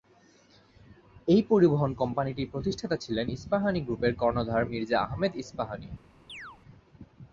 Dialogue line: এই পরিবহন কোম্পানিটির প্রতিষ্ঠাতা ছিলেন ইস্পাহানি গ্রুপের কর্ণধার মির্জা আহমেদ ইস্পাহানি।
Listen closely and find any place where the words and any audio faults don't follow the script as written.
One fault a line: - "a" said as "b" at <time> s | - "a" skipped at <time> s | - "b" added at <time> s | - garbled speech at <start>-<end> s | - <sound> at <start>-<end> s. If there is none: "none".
- chirp at 6.3-6.6 s